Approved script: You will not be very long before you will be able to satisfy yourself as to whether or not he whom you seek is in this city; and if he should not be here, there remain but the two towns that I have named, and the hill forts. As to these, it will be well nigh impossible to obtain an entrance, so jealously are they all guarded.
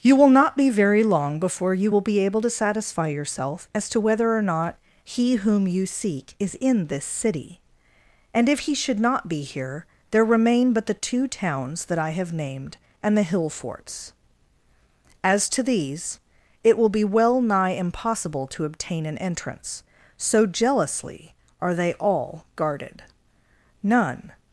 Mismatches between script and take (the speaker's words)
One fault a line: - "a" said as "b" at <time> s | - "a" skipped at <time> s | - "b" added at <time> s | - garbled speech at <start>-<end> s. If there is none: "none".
- "None" added at 23.8 s